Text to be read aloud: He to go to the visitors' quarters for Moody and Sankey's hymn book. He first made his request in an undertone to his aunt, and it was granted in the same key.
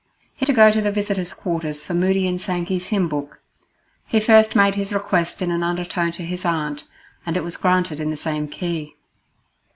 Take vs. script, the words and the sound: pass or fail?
pass